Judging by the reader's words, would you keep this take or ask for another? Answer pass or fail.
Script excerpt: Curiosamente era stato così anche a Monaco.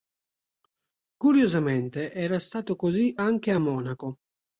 pass